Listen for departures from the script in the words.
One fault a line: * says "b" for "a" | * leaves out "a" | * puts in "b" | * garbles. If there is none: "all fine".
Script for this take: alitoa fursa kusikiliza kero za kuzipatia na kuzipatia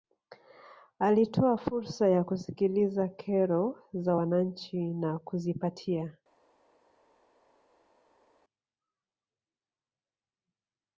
* puts in "ya"
* says "wananchi" for "kuzipatia"